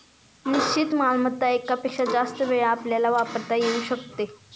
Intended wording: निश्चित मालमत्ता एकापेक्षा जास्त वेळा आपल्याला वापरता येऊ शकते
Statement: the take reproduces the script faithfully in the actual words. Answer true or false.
true